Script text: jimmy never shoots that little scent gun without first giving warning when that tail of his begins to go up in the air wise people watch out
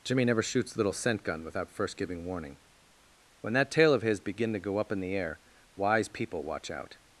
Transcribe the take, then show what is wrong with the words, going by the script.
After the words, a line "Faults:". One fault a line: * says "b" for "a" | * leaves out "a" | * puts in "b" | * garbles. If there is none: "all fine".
jimmy never shoots little scent gun without first giving warning when that tail of his begin to go up in the air wise people watch out
Faults:
* leaves out "that"
* says "begin" for "begins"